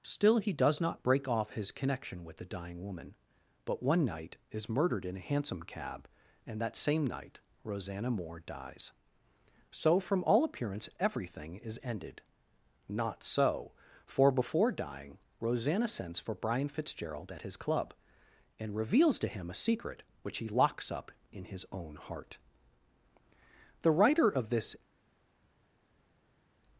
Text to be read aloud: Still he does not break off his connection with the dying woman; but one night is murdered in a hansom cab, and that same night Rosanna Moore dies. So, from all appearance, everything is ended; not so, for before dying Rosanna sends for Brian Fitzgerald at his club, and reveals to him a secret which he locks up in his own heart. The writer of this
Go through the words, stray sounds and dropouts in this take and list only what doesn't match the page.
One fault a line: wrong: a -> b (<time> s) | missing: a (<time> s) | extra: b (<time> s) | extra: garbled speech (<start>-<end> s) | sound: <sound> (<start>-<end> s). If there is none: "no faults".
no faults